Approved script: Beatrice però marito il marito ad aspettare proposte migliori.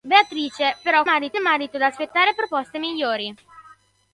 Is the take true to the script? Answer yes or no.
yes